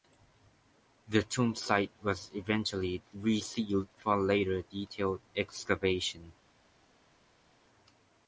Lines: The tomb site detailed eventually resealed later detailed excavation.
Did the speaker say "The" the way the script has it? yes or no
yes